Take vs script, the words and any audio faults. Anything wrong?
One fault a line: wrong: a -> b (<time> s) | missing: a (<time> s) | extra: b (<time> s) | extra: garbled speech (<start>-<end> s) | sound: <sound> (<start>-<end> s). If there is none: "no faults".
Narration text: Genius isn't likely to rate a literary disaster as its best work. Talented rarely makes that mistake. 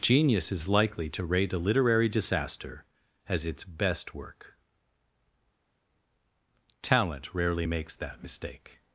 wrong: isn't -> is (0.5 s)
wrong: Talented -> Talent (6.8 s)